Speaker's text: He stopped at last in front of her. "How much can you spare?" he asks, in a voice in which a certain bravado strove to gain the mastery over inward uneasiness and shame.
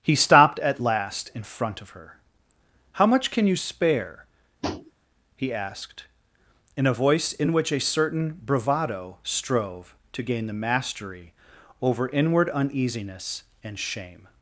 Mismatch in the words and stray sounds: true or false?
true